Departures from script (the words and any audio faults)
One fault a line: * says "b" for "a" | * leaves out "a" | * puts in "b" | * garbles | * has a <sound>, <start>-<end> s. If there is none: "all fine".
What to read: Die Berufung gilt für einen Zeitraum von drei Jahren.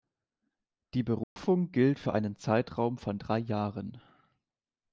* has a dropout, 1.2-1.4 s